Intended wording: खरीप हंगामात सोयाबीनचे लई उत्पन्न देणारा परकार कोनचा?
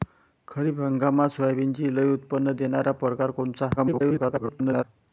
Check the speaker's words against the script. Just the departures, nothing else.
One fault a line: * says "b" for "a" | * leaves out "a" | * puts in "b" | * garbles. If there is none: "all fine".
* garbles